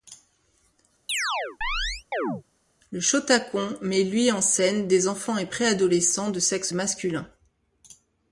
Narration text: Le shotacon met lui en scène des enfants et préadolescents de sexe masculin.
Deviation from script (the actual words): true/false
false